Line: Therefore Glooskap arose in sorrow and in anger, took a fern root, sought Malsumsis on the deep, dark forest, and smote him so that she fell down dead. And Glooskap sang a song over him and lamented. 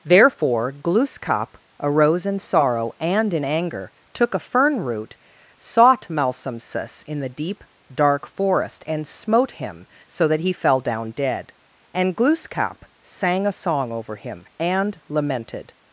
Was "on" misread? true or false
true